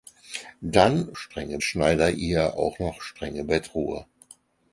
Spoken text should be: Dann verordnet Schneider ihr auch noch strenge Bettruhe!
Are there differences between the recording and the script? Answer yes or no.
yes